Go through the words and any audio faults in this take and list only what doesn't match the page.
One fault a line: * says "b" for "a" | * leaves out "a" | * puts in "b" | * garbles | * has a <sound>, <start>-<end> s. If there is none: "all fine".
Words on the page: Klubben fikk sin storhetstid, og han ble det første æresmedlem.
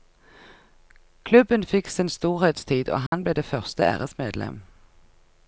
* has a dropout, 3.1-3.1 s